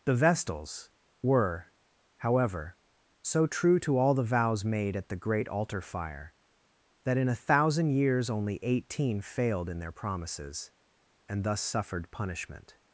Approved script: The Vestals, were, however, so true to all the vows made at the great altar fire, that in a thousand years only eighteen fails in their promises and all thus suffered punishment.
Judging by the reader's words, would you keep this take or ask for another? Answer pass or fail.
fail